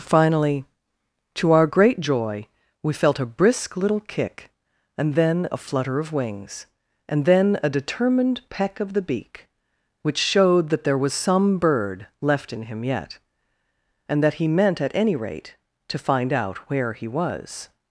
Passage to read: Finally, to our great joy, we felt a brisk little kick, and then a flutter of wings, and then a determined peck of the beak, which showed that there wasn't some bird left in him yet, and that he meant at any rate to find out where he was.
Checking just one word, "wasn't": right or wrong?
wrong